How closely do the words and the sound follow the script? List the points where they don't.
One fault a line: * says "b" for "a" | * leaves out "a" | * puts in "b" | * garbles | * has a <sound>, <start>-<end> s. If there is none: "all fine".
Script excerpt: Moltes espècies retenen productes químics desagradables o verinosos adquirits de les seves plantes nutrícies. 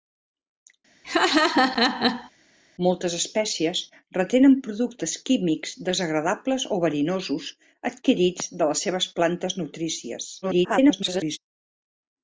* has a laugh, 1.0-2.3 s
* garbles